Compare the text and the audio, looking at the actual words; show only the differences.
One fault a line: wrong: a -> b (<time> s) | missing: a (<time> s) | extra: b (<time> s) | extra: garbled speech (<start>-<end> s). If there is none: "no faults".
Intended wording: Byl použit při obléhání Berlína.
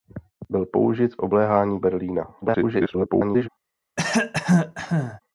missing: při (1.2 s)
extra: garbled speech (2.4-3.5 s)